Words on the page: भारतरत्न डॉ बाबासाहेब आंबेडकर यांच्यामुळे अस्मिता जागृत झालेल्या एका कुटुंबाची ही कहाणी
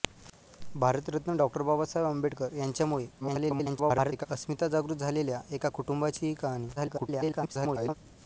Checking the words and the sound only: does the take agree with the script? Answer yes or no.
no